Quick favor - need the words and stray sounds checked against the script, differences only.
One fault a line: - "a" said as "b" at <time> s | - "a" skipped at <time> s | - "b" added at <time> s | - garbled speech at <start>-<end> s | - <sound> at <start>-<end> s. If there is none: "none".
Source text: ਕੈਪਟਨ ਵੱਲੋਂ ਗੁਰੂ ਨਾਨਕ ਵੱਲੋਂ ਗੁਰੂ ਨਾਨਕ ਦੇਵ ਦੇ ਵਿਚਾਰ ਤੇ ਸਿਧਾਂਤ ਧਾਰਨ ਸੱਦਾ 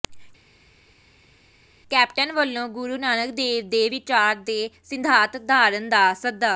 - "ਵੱਲੋਂ ਗੁਰੂ ਨਾਨਕ" skipped at 3.3 s
- "ਦਾ" added at 5.9 s